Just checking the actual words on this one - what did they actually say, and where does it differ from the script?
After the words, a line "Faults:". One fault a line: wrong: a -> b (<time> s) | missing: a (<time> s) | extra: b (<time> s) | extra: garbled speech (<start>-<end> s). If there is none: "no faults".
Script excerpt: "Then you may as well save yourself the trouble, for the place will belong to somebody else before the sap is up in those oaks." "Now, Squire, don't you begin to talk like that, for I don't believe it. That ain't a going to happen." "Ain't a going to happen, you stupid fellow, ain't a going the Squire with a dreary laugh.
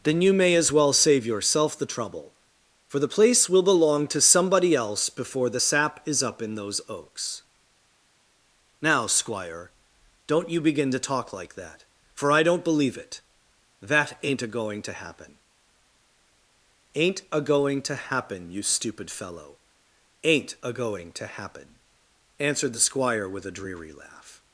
"Then you may as well save yourself the trouble, for the place will belong to somebody else before the sap is up in those oaks." "Now, Squire, don't you begin to talk like that, for I don't believe it. That ain't a going to happen." "Ain't a going to happen, you stupid fellow, ain't a going to happen," answered the Squire with a dreary laugh.
Faults:
extra: to happen answered (21.1 s)